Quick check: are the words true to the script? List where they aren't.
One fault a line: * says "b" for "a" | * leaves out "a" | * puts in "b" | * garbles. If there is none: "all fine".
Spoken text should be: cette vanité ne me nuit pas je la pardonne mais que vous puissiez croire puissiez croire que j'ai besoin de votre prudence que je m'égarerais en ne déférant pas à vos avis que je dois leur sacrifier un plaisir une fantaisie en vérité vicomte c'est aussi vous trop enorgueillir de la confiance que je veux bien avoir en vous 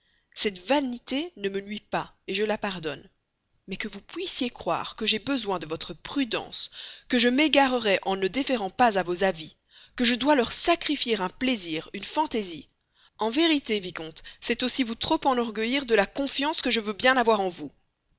* leaves out "puissiez croire"